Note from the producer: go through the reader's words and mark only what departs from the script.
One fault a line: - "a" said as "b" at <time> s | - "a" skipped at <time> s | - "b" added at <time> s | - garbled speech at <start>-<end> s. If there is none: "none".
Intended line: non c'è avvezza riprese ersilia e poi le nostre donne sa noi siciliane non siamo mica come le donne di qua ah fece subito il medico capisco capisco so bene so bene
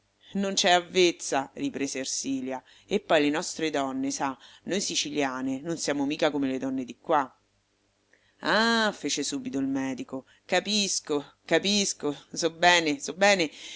none